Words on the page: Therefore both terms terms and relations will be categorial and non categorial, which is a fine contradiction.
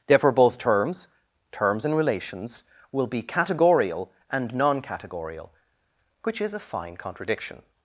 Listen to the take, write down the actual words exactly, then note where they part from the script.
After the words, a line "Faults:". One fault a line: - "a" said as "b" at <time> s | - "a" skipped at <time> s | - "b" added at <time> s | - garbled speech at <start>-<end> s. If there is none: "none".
Therefore both terms terms and relations will be categorial and non categorial, which is a fine contradiction.
Faults:
none